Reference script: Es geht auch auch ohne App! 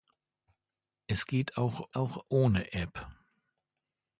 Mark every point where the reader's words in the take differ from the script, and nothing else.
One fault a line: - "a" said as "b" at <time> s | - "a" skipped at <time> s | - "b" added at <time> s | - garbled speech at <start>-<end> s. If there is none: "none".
none